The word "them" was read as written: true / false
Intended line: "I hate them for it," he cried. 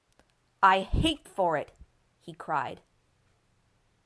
false